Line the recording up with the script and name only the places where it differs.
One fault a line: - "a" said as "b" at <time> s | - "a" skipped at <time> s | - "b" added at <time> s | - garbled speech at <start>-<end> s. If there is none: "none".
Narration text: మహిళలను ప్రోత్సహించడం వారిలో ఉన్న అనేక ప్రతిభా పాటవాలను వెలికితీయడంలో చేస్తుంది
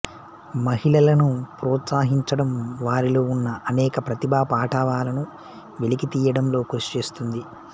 - "కృషి" added at 6.7 s